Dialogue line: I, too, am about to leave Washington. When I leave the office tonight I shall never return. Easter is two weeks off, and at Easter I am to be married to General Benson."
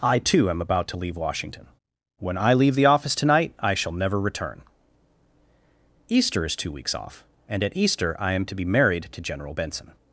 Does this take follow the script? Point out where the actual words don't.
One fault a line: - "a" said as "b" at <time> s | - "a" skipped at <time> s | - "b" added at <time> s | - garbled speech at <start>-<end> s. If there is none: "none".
none